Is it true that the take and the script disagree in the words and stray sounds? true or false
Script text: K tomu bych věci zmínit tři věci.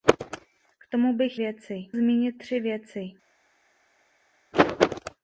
false